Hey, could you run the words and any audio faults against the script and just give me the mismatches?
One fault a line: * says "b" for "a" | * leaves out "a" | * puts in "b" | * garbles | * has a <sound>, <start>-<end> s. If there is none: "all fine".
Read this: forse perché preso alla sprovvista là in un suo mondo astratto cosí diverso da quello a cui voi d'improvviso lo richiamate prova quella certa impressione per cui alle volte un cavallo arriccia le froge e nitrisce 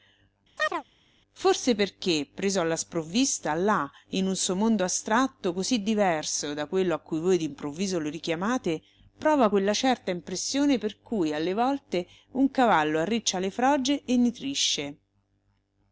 * has a chirp, 0.6-0.8 s